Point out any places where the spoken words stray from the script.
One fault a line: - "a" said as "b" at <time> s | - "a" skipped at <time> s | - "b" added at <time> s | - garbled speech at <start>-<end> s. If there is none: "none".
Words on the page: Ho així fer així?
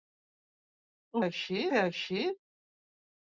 none